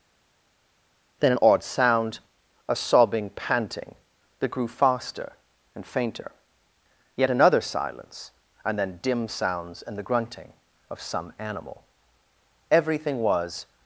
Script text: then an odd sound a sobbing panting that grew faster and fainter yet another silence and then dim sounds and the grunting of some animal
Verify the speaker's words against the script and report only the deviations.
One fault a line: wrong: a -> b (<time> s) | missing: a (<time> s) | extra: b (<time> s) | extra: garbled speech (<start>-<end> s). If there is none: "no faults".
extra: everything was (12.7 s)